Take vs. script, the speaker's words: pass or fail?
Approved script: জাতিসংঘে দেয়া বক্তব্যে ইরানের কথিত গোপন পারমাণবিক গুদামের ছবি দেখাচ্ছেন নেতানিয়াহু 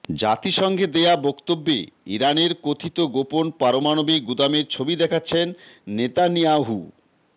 pass